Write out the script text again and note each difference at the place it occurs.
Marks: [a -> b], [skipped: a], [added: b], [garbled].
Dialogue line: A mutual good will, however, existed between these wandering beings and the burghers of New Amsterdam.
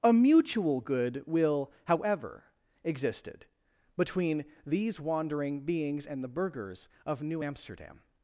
A mutual good will, however, existed between these wandering beings and the burghers of New Amsterdam.